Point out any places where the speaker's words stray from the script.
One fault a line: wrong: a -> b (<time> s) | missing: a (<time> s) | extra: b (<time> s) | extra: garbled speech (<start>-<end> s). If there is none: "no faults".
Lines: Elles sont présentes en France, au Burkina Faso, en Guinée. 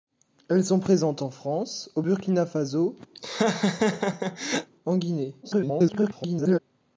extra: garbled speech (5.4-6.6 s)